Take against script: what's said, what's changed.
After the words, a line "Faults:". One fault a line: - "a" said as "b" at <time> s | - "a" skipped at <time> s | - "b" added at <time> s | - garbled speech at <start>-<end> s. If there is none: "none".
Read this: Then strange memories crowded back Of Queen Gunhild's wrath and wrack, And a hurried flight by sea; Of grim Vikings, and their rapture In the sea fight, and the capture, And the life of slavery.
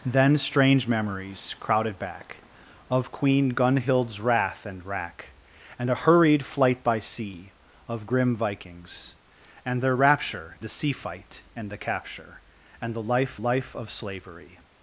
Then strange memories crowded back Of Queen Gunhild's wrath and wrack, And a hurried flight by sea; Of grim Vikings, and their rapture The sea fight, and the capture, And the life life of slavery.
Faults:
- "In" skipped at 10.6 s
- "life" added at 13.4 s